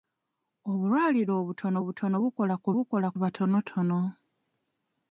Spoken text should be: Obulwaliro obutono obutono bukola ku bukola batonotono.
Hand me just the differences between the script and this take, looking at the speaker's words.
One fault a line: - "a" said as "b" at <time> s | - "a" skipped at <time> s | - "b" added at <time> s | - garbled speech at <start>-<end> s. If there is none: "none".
none